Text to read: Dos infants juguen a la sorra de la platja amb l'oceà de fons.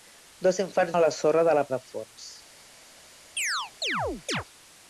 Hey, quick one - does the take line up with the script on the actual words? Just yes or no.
no